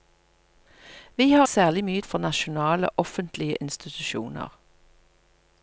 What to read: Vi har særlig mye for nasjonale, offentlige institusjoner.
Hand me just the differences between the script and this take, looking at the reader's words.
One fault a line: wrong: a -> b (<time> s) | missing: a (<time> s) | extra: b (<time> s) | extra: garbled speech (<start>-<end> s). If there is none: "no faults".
no faults